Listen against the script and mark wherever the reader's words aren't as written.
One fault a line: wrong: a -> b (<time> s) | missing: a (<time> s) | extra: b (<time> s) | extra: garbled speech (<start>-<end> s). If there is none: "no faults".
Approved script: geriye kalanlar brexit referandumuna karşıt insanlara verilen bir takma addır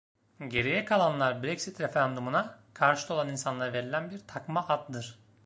extra: olan (3.1 s)